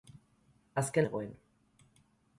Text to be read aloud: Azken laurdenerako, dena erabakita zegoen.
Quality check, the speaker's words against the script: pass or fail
fail